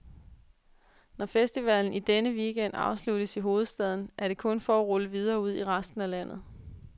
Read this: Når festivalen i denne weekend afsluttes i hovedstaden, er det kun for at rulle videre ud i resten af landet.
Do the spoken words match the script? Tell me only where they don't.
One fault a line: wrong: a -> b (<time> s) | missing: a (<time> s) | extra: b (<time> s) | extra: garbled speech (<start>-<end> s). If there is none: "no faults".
no faults